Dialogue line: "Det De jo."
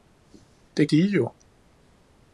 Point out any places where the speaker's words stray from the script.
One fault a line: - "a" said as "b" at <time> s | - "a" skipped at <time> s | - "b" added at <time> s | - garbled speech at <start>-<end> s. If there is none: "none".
none